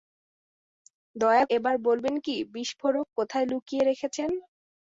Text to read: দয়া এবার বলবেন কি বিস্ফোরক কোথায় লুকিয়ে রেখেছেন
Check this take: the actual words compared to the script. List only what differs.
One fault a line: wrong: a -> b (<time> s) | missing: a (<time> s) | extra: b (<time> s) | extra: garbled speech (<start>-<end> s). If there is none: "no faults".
no faults